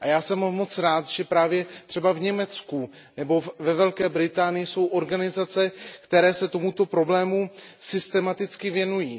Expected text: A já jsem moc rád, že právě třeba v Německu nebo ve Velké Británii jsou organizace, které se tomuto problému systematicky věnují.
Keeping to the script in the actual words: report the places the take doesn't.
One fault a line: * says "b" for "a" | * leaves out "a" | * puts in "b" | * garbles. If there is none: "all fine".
all fine